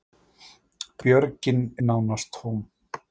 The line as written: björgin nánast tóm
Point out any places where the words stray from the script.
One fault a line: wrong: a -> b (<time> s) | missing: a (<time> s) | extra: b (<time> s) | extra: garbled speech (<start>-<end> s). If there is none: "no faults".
no faults